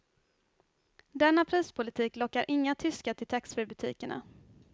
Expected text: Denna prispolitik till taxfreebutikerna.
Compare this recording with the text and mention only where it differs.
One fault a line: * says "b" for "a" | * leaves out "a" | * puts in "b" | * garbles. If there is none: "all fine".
* puts in "lockar inga tyskar"